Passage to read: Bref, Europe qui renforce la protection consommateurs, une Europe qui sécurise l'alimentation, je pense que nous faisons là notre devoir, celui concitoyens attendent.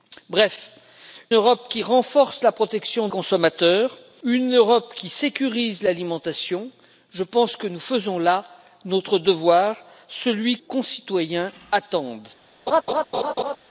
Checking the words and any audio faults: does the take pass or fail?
fail